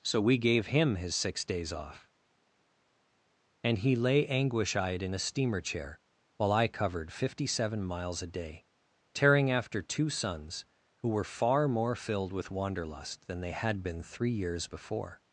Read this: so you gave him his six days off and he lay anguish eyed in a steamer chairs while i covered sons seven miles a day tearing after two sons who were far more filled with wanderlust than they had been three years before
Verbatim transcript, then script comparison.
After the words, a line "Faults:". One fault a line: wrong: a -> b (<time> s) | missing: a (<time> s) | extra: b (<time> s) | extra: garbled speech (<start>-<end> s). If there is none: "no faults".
so we gave him his six days off and he lay anguish eyed in a steamer chair while i covered fifty seven miles a day tearing after two sons who were far more filled with wanderlust than they had been three years before
Faults:
wrong: you -> we (0.2 s)
wrong: chairs -> chair (5.6 s)
wrong: sons -> fifty (7.1 s)